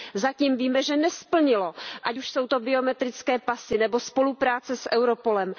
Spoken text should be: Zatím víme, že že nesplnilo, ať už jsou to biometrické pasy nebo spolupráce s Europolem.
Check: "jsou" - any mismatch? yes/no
no